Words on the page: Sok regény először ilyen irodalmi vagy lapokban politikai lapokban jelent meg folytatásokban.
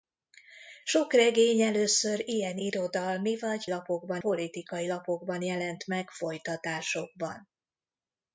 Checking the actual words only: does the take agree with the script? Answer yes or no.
yes